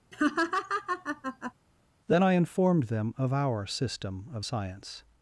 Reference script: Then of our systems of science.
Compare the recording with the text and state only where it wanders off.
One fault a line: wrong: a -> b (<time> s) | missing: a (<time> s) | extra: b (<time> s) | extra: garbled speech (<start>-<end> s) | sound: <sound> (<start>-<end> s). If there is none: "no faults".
sound: laugh (0.1-1.5 s)
extra: I informed them (2.2 s)
wrong: systems -> system (3.7 s)